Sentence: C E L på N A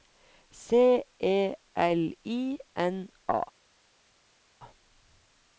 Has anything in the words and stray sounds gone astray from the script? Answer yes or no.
yes